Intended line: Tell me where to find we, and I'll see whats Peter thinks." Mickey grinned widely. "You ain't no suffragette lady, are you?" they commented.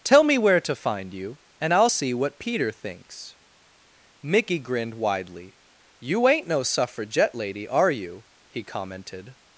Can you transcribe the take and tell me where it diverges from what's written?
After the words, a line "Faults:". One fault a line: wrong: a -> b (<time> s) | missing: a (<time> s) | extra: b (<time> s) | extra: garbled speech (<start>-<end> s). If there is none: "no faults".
Tell me where to find you, and I'll see what Peter thinks." Mickey grinned widely. "You ain't no suffragette lady, are you?" he commented.
Faults:
wrong: we -> you (1.1 s)
wrong: whats -> what (2.1 s)
wrong: they -> he (8.5 s)